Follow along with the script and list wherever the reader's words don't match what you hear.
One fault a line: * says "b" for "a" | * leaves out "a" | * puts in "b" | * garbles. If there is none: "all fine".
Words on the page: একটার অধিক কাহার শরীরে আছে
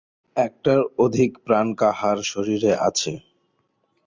* puts in "প্রাণ"